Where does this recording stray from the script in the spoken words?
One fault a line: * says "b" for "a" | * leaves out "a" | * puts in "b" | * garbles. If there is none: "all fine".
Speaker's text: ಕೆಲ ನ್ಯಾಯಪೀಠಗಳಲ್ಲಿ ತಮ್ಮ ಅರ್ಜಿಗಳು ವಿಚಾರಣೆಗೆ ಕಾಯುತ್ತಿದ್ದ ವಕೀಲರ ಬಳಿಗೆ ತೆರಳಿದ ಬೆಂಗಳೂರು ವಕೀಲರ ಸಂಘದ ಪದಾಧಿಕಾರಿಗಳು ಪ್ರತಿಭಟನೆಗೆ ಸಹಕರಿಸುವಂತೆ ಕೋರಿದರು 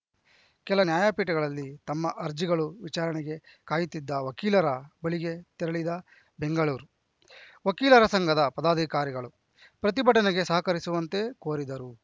all fine